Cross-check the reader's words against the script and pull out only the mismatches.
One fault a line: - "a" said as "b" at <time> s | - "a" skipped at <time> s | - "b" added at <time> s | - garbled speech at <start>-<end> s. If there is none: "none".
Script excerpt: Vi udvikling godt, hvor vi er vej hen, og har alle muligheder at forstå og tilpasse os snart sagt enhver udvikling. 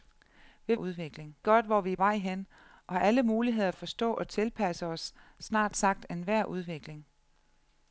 none